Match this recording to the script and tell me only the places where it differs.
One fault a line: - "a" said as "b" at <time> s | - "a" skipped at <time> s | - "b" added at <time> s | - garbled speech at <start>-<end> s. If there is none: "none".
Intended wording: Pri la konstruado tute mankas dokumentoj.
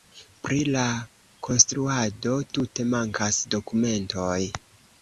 none